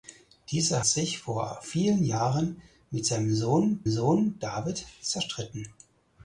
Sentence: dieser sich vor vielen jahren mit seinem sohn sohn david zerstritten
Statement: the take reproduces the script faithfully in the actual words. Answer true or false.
true